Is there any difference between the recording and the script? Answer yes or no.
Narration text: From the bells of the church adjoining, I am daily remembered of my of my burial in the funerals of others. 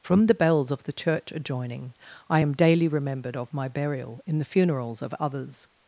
yes